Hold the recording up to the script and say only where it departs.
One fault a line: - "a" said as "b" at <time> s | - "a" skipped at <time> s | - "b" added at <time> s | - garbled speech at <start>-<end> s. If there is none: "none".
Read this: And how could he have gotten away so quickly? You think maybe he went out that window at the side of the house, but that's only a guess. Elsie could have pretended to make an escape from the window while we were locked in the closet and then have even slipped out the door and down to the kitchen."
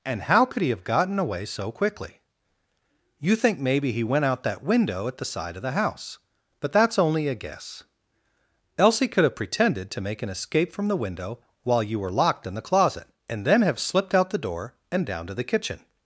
- "we" said as "you" at 11.8 s
- "even" skipped at 13.8 s